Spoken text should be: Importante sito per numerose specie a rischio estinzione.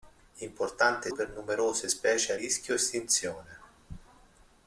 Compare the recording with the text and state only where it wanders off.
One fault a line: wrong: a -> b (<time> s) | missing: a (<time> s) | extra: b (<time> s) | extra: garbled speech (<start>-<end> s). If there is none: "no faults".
missing: sito (1.1 s)